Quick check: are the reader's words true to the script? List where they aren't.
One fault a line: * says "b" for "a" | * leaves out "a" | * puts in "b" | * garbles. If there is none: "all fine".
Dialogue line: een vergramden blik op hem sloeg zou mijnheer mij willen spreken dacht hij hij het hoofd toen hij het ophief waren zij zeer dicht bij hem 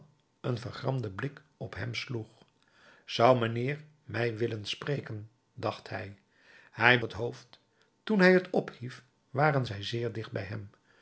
all fine